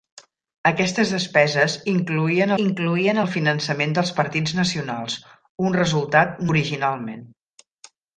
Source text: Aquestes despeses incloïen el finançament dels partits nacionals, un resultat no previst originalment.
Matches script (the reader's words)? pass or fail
fail